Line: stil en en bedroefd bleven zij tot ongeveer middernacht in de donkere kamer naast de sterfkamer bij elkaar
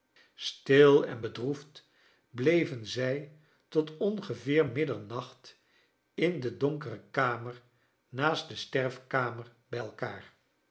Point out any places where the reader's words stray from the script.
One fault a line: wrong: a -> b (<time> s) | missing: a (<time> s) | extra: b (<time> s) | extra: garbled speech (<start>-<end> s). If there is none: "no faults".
missing: en (1.2 s)